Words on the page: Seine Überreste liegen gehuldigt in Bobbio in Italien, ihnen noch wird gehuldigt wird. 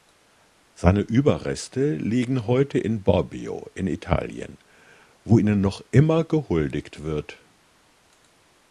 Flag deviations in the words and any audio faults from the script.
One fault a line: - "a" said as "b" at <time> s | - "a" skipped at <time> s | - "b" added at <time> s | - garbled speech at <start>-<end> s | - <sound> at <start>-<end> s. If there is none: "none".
- "gehuldigt" said as "heute" at 2.5 s
- "wo" added at 5.2 s
- "wird" said as "immer" at 5.9 s